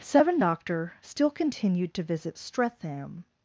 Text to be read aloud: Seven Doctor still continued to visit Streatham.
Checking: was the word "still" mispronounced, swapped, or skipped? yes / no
no